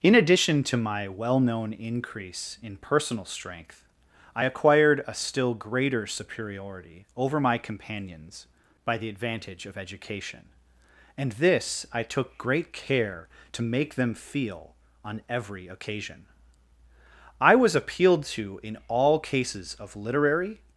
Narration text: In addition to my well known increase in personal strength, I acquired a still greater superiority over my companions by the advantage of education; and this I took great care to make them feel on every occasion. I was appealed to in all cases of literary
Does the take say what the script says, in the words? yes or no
yes